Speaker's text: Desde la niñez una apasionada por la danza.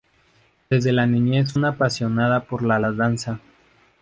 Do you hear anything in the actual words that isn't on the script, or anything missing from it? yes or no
no